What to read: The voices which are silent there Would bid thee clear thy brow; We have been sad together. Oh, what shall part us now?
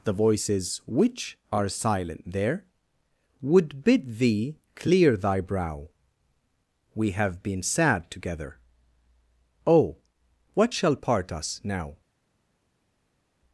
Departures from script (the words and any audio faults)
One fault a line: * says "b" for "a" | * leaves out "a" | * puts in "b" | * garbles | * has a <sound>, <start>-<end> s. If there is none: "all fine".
all fine